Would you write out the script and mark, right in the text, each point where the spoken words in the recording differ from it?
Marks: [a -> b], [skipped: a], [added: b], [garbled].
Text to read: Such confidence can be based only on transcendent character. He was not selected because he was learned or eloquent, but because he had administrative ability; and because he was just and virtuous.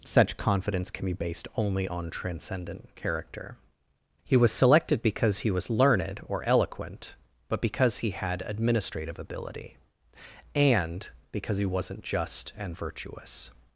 Such confidence can be based only on transcendent character. He was [skipped: not] selected because he was learned or eloquent, but because he had administrative ability; and because he [was -> wasn't] just and virtuous.